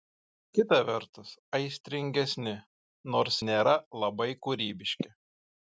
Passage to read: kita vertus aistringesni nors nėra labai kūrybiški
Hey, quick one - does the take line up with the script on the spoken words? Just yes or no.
yes